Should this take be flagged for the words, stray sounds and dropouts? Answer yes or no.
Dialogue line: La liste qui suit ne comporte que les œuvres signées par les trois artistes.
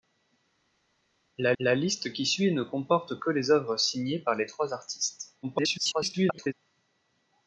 yes